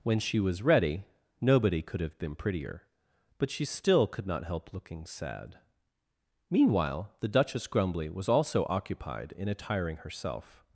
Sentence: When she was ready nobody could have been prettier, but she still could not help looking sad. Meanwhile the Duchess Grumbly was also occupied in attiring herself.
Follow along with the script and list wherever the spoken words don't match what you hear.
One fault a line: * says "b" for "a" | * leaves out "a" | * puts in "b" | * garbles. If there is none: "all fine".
all fine